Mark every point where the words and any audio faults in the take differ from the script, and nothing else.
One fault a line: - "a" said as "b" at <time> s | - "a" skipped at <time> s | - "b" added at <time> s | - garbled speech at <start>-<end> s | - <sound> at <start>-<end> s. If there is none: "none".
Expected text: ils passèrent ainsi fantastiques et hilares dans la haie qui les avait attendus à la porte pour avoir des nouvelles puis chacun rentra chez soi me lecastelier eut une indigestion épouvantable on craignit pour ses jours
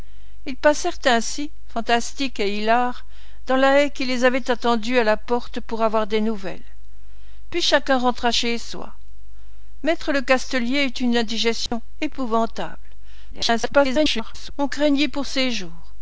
- dropout at 11.7-11.7 s
- garbled speech at 13.3-14.5 s